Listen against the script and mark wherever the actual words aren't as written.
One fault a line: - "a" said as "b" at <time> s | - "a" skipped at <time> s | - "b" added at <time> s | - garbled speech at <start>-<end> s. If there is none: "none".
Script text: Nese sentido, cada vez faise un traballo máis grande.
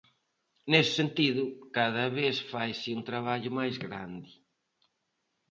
none